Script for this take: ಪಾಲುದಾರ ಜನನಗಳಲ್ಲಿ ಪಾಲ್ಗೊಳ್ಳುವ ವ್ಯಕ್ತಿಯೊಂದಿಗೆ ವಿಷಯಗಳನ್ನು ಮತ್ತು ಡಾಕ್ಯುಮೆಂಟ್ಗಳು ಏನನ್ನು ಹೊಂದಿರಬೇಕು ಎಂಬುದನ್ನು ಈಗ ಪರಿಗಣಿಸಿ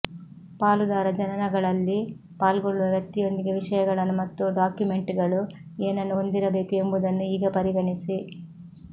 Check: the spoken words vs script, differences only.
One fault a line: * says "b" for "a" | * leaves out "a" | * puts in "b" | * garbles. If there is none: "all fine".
all fine